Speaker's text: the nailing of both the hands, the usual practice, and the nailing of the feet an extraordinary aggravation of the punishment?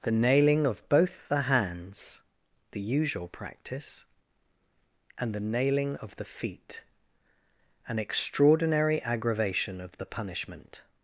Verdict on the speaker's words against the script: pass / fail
pass